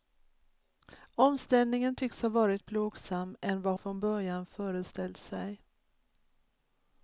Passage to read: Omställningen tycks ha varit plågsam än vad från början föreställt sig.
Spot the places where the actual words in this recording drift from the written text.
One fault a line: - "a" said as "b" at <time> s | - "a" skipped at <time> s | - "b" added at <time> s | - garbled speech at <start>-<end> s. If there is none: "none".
none